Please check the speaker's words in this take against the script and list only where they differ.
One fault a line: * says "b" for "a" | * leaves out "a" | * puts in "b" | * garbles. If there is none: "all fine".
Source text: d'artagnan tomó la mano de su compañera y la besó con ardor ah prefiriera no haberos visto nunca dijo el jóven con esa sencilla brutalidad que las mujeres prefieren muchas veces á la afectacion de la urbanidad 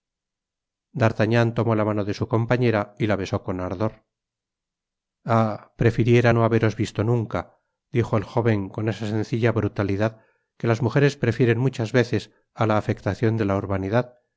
all fine